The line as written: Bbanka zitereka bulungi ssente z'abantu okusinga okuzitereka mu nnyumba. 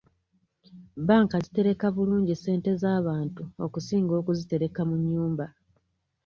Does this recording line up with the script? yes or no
yes